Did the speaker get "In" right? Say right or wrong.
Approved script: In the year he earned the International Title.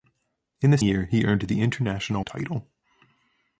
right